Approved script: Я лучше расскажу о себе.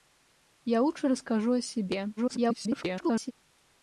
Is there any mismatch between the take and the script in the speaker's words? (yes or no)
yes